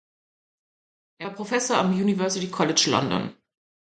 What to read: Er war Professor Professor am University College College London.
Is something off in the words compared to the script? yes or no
yes